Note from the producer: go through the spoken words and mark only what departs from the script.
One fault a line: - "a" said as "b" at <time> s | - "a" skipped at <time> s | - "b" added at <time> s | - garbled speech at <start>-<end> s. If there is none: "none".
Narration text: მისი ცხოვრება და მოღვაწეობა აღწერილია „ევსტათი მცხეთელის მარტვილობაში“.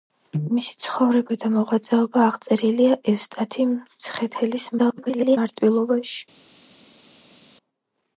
- garbled speech at 4.8-5.4 s